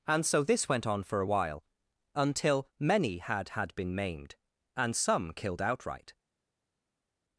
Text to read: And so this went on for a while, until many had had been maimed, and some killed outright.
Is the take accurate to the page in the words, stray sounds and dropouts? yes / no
yes